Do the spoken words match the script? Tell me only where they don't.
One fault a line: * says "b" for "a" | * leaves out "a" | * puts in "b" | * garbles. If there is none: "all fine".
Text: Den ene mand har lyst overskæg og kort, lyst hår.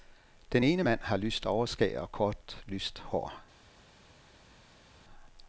all fine